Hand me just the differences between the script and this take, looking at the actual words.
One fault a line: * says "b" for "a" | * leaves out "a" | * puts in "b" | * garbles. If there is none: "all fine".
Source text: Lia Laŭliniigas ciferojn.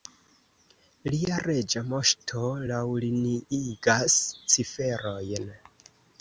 * puts in "Reĝa Moŝto"